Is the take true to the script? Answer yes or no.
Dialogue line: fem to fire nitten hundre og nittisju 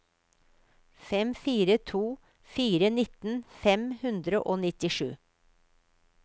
no